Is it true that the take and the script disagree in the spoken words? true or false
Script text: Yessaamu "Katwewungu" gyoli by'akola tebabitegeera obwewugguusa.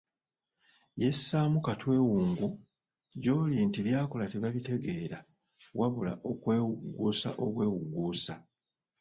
true